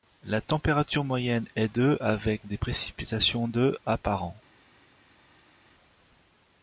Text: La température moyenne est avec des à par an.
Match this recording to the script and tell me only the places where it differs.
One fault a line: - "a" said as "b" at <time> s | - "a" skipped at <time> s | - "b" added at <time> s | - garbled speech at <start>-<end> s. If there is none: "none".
- "de" added at 1.8 s
- "précipitations de" added at 2.6 s